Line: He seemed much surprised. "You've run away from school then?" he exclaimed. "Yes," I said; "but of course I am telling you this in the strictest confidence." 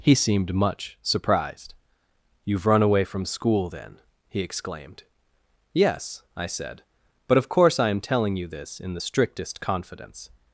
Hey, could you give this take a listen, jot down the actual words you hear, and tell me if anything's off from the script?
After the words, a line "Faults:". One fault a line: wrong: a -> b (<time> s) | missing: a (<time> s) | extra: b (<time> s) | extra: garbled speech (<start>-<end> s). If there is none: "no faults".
He seemed much surprised. "You've run away from school then?" he exclaimed. "Yes," I said; "but of course I am telling you this in the strictest confidence."
Faults:
no faults